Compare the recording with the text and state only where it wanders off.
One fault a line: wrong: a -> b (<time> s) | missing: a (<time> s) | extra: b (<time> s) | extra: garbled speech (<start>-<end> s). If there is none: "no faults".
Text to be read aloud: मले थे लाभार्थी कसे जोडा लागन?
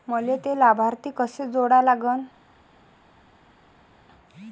no faults